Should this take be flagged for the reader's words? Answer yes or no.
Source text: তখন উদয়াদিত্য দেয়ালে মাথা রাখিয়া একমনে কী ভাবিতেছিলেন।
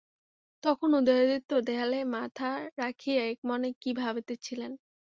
no